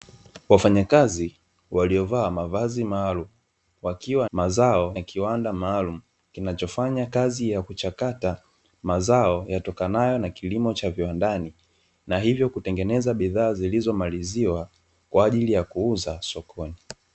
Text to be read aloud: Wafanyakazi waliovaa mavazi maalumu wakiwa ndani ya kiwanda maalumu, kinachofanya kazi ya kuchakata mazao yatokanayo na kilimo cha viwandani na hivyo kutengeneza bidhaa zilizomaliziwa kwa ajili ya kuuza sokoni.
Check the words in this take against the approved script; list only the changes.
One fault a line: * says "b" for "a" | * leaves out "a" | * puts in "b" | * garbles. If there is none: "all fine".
* says "mazao" for "ndani"